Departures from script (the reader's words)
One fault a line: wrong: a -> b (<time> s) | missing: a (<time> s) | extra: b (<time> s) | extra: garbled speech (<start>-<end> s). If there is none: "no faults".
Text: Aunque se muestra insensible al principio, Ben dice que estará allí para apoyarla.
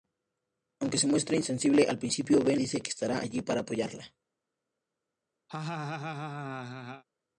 no faults